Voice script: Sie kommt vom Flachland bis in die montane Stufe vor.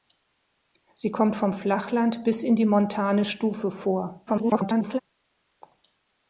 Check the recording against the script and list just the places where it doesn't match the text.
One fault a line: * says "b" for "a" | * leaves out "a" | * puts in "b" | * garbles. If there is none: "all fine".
* garbles